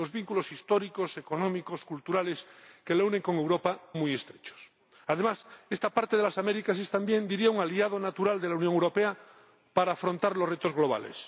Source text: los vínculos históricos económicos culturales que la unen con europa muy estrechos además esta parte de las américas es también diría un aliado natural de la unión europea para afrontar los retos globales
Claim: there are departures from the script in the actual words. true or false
false